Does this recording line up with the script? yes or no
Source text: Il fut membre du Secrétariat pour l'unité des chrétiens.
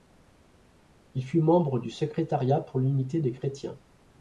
yes